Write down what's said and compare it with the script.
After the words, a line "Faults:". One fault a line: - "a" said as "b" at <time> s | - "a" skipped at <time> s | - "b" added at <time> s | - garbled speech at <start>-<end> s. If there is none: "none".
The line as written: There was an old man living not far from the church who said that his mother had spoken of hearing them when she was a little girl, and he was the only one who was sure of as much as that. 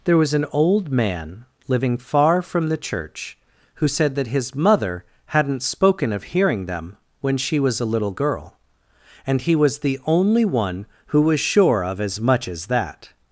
There was an old man living far from the church who said that his mother hadn't spoken of hearing them when she was a little girl, and he was the only one who was sure of as much as that.
Faults:
- "not" skipped at 2.0 s
- "had" said as "hadn't" at 5.3 s